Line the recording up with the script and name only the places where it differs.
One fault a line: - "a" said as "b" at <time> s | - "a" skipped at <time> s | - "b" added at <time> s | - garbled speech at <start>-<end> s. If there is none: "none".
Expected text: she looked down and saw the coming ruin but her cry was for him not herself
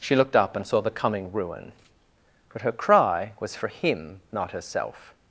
- "down" said as "up" at 0.3 s